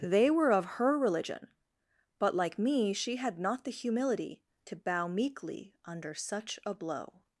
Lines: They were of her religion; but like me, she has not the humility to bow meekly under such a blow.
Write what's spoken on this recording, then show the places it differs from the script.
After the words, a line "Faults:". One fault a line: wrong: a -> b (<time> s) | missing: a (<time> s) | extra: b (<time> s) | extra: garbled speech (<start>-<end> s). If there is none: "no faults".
They were of her religion; but like me, she had not the humility to bow meekly under such a blow.
Faults:
wrong: has -> had (3.2 s)